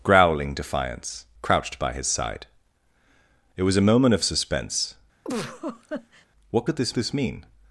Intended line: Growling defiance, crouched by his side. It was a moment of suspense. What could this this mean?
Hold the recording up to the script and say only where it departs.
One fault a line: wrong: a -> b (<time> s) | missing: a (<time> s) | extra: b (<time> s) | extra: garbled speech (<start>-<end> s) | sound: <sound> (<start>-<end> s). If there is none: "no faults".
sound: laugh (5.2-6.3 s)